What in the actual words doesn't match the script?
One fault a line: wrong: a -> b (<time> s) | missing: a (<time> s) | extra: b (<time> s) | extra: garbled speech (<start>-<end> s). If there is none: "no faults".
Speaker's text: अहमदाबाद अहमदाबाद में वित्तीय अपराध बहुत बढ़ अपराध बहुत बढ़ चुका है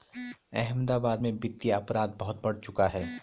missing: अहमदाबाद (1.2 s)
missing: अपराध बहुत बढ़ (2.6 s)